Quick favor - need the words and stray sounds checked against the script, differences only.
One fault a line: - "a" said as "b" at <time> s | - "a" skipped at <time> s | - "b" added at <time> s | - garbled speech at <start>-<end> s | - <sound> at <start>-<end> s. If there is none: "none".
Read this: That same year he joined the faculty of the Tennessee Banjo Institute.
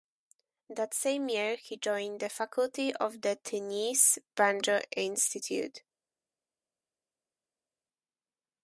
none